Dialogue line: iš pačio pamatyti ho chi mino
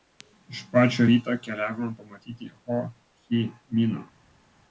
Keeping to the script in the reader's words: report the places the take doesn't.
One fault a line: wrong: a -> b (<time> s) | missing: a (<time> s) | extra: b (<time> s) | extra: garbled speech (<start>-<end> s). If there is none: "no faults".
extra: ryto keliavome (1.1 s)